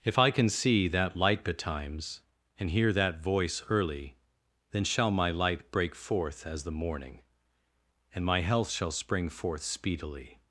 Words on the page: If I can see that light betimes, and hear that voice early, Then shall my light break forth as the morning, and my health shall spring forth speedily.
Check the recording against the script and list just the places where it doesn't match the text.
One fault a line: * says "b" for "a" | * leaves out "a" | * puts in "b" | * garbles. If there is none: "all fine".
all fine